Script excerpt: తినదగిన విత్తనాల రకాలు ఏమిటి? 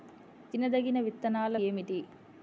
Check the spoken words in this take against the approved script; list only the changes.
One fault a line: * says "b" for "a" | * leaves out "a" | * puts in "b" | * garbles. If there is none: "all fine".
* leaves out "రకాలు"